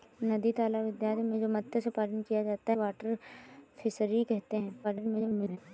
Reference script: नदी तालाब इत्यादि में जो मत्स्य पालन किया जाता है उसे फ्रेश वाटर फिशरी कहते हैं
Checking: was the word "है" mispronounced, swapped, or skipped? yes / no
yes